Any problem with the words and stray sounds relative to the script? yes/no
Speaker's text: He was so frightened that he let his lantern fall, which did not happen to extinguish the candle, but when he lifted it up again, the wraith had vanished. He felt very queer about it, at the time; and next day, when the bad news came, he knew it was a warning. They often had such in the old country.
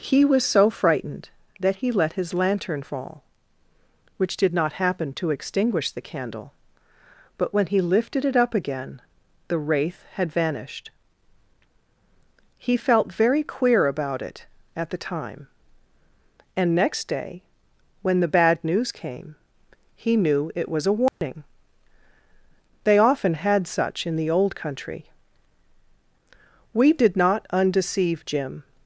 yes